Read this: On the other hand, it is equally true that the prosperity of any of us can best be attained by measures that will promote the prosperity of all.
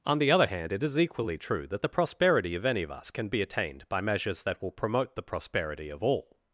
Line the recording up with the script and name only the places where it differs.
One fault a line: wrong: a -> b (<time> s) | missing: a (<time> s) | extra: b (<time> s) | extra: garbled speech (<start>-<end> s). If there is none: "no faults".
missing: best (3.3 s)